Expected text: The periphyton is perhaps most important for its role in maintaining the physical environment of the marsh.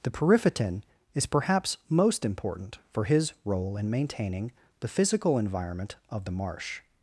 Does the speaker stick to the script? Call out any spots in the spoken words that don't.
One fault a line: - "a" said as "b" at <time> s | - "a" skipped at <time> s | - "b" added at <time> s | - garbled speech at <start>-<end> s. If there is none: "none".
- "its" said as "his" at 3.0 s